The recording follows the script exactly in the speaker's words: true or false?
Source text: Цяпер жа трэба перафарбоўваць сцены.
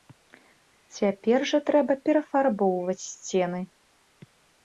true